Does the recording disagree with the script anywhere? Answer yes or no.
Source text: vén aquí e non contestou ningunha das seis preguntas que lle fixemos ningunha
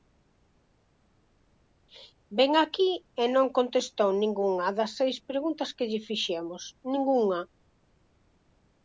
no